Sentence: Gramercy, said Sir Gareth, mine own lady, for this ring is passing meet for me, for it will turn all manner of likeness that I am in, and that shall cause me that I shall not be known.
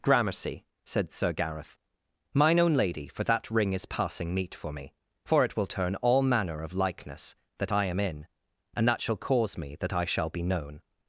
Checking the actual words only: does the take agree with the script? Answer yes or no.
no